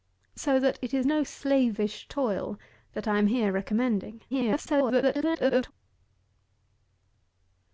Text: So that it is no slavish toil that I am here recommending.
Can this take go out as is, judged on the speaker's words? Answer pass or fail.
fail